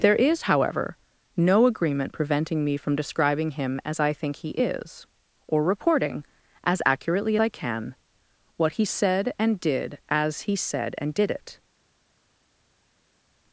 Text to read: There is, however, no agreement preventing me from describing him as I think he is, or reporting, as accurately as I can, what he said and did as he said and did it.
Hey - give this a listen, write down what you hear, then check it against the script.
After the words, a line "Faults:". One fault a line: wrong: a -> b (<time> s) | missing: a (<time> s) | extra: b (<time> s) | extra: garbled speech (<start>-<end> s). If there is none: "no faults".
There is, however, no agreement preventing me from describing him as I think he is, or reporting, as accurately I can, what he said and did as he said and did it.
Faults:
missing: as (7.4 s)